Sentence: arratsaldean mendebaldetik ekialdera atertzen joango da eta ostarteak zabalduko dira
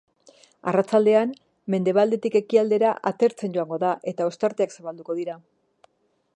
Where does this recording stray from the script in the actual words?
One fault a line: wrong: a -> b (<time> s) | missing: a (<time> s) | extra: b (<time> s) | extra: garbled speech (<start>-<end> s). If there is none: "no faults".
no faults